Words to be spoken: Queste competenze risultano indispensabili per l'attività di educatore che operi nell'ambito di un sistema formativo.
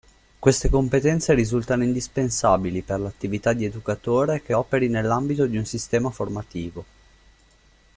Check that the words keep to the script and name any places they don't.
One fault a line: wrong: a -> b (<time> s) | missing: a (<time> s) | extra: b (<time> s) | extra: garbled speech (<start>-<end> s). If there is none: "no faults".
no faults